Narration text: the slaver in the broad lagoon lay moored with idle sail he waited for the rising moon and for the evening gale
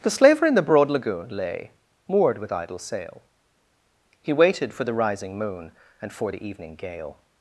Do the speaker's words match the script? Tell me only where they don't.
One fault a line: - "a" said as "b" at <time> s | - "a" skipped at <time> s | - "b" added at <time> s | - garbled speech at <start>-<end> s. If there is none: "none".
none